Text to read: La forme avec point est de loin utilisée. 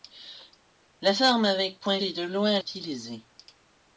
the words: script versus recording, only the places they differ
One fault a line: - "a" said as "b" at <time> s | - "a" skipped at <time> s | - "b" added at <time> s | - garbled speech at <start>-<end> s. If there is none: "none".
none